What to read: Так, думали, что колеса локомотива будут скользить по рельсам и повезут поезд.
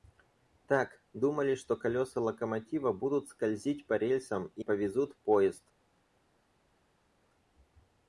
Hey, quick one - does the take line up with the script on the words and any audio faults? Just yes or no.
yes